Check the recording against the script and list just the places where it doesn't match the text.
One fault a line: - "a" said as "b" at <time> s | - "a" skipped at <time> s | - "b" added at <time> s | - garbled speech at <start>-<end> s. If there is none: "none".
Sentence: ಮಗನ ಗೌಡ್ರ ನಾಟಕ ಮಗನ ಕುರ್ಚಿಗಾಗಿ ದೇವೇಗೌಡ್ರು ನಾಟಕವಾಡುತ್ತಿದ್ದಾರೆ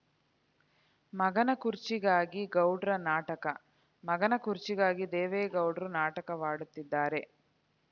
- "ಕುರ್ಚಿಗಾಗಿ" added at 1.6 s